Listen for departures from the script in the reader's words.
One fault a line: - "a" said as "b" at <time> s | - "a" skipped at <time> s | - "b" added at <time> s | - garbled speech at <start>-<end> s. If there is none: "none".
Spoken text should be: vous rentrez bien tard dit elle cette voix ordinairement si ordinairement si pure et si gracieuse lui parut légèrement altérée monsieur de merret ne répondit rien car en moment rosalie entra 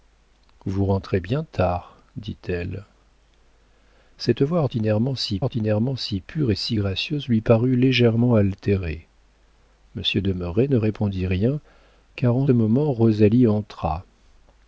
none